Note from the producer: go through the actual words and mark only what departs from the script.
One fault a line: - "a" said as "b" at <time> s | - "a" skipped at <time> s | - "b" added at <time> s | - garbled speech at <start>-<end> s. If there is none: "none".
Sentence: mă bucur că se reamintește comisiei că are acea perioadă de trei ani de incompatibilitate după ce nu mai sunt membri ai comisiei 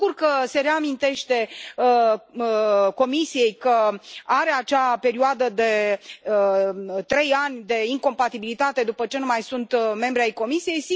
none